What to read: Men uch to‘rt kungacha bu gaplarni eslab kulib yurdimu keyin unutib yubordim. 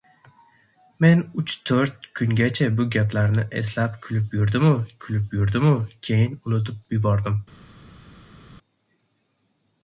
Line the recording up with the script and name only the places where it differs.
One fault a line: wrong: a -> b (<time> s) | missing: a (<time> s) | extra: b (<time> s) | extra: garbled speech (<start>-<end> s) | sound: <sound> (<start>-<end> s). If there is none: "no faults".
extra: kulib yurdimu (5.1 s)